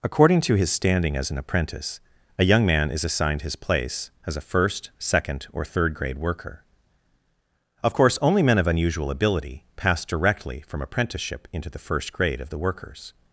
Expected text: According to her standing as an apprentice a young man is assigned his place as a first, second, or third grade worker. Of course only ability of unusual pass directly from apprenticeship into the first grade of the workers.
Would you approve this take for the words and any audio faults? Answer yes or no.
no